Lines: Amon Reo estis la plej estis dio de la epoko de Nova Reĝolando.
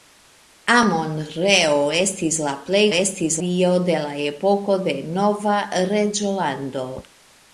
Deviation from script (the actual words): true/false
false